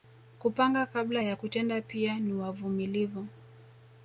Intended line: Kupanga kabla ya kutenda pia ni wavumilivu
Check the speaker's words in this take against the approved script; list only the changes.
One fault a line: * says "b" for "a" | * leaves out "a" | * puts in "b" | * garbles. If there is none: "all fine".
all fine